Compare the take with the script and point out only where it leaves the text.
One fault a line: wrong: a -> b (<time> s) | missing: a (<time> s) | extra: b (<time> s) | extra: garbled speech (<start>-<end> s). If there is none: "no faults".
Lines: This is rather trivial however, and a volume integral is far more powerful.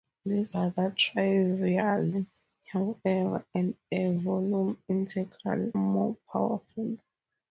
missing: is (0.6 s)
missing: is far (5.7 s)